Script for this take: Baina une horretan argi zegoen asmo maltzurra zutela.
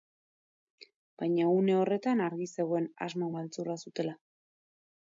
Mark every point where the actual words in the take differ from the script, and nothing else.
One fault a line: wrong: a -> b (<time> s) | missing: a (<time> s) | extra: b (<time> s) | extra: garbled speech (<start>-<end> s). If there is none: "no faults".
no faults